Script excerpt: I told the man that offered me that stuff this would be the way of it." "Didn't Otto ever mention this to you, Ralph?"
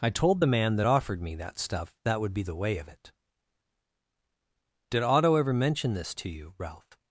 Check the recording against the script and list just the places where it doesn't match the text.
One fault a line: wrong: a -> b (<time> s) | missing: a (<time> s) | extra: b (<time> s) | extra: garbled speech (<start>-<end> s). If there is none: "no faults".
wrong: this -> that (2.0 s)
wrong: Didn't -> Did (4.9 s)